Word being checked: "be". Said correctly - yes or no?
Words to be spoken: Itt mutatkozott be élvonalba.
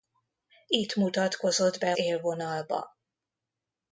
yes